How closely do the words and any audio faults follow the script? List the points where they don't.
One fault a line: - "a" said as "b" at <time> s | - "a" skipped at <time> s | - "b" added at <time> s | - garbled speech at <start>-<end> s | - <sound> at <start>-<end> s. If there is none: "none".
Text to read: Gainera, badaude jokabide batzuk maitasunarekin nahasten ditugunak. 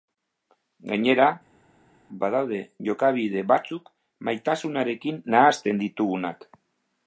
none